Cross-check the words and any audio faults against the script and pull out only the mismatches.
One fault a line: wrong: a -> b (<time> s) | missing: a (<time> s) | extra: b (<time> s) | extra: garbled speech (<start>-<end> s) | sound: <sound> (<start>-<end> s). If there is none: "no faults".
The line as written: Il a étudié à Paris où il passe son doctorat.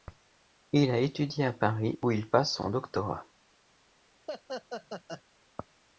extra: son (2.6 s)
sound: laugh (4.3-5.2 s)